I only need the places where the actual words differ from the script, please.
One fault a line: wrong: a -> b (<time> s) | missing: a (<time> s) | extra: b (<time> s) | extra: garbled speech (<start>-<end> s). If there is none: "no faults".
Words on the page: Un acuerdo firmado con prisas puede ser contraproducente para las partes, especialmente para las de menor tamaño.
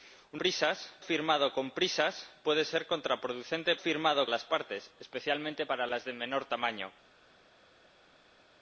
wrong: acuerdo -> prisas (0.3 s)
wrong: para -> firmado (3.8 s)